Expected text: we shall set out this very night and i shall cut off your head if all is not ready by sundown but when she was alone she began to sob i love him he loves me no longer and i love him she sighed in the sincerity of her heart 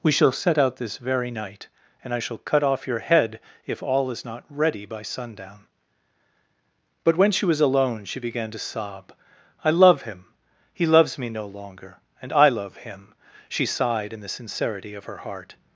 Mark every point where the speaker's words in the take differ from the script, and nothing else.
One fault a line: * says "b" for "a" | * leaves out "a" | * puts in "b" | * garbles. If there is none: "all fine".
all fine